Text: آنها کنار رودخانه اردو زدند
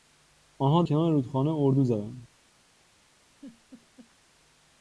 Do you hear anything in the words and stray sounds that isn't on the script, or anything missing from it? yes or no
yes